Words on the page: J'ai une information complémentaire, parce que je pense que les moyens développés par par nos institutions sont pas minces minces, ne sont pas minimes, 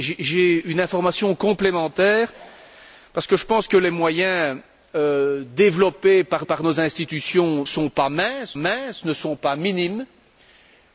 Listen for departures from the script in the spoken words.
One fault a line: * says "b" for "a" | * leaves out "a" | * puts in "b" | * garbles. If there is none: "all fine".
all fine